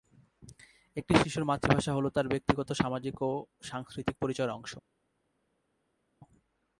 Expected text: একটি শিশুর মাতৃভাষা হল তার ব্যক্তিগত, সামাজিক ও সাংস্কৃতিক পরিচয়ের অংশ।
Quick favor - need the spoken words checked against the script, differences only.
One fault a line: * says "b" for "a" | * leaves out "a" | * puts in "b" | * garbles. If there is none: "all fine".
all fine